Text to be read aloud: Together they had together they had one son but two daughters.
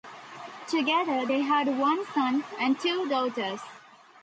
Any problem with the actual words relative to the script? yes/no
yes